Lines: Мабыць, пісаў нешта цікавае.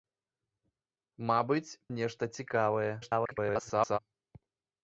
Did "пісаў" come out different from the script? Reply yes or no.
yes